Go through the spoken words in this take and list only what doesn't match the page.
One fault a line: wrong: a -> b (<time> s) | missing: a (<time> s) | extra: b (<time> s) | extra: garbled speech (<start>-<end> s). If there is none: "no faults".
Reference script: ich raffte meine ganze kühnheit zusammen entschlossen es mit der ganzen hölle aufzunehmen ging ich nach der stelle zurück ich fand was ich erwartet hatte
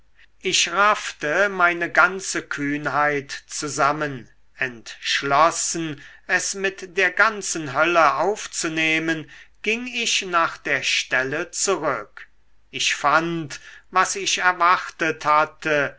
no faults